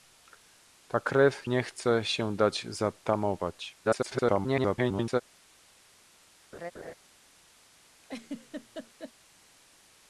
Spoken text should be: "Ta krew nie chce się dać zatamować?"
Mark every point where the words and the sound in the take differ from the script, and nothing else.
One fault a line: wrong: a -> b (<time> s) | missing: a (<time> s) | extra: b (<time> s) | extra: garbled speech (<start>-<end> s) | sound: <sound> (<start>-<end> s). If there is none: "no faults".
extra: garbled speech (3.8-5.2 s)
sound: laugh (6.5-6.9 s)
sound: laugh (8.0-9.1 s)